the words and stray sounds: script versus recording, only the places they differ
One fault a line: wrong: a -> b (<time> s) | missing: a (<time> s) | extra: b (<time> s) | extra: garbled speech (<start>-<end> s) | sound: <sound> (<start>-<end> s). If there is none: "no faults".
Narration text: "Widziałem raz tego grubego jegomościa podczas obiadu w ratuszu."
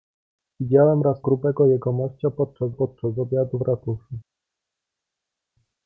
missing: tego (1.2 s)
extra: podczas (2.7 s)